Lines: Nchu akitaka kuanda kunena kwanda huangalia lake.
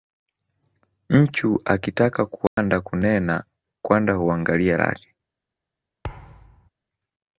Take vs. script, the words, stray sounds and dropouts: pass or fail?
fail